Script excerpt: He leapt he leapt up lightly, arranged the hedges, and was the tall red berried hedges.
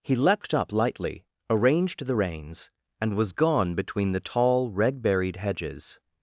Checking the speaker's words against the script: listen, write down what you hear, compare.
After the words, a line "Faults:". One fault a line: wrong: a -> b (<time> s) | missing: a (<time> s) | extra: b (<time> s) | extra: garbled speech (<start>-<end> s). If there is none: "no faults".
He leapt up lightly, arranged the reins, and was gone between the tall red berried hedges.
Faults:
missing: he leapt (0.5 s)
wrong: hedges -> reins (2.1 s)
extra: gone between (3.3 s)